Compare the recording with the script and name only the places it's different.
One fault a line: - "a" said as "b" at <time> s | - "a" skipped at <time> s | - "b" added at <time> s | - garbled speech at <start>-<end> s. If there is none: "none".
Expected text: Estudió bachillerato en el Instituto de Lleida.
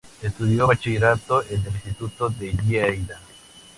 none